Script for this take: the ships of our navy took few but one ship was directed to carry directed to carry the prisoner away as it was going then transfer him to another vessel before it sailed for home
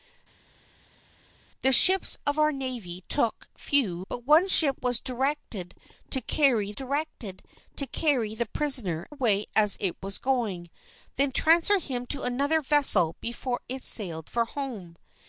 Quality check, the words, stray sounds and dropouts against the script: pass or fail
pass